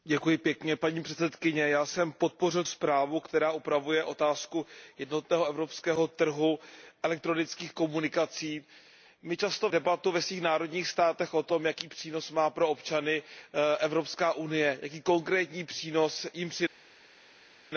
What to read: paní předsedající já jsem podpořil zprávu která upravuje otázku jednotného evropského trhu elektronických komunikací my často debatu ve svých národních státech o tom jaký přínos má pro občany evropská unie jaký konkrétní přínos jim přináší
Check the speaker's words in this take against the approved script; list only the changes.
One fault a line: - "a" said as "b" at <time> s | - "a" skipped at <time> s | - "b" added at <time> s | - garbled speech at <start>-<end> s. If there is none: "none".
none